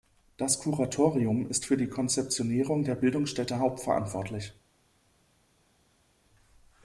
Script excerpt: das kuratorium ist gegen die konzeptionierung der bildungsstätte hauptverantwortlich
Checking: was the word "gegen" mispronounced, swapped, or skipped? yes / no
yes